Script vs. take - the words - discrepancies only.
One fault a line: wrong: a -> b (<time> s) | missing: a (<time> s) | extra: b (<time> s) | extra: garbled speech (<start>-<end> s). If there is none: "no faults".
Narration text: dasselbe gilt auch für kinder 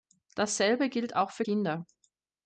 no faults